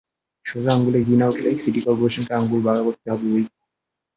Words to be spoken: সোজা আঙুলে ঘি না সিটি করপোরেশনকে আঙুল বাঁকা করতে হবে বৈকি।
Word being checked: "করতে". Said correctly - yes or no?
yes